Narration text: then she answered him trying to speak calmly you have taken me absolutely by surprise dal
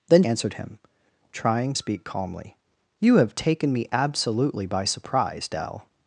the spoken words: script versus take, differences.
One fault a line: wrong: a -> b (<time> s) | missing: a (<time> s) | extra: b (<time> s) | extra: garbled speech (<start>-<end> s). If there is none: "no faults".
missing: she (0.2 s)
missing: to (1.7 s)